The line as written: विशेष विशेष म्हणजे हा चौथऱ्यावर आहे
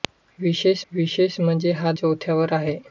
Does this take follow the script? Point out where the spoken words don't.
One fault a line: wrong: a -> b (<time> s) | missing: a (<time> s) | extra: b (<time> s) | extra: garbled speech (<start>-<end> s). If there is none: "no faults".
no faults